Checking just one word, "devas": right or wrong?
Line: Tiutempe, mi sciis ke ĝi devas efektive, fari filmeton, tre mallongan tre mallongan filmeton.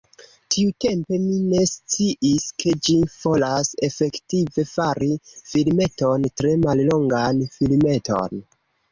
wrong